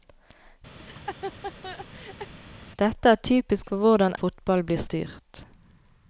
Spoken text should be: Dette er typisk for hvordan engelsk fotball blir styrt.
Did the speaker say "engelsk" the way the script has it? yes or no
no